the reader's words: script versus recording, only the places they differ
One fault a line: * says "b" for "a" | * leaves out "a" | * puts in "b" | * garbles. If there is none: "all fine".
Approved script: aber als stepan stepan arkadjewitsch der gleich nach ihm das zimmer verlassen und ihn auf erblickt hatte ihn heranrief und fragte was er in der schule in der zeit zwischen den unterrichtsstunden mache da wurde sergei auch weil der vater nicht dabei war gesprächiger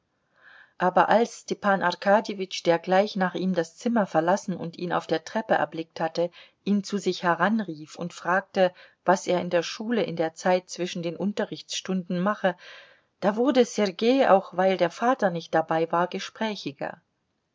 * leaves out "stepan"
* puts in "der treppe"
* puts in "zu sich"